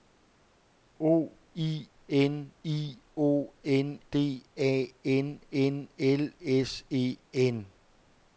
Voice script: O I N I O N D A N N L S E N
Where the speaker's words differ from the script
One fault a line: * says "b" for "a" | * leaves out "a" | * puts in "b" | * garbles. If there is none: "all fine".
all fine